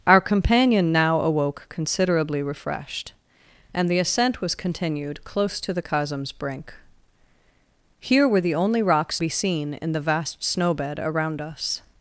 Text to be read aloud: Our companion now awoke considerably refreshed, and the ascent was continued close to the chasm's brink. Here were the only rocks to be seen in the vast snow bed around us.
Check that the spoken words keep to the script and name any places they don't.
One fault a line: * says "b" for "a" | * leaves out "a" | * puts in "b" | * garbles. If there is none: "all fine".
* leaves out "to"